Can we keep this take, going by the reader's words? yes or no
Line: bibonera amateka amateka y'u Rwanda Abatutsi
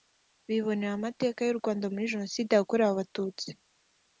no